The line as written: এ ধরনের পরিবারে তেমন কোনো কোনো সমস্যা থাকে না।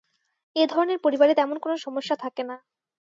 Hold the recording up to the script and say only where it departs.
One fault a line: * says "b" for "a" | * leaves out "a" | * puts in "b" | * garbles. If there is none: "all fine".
* leaves out "কোনো"